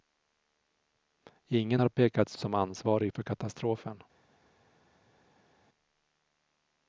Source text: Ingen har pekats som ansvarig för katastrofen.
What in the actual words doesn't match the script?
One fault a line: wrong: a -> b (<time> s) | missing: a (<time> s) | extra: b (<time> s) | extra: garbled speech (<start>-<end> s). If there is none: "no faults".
no faults